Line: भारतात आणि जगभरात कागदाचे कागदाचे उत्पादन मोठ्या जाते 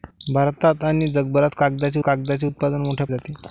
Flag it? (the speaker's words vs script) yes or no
no